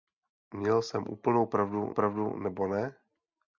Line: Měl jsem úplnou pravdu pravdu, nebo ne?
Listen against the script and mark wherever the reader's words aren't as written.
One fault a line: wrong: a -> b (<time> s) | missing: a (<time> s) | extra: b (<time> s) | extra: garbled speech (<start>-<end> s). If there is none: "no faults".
no faults